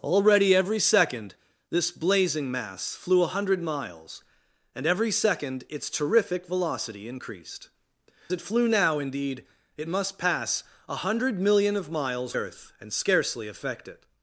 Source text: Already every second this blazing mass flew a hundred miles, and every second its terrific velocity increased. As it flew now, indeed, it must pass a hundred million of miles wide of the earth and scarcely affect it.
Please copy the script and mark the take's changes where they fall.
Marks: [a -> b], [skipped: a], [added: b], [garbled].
Already every second this blazing mass flew a hundred miles, and every second its terrific velocity increased. [skipped: As] it flew now, indeed, it must pass a hundred million of miles [skipped: wide of the] earth and scarcely affect it.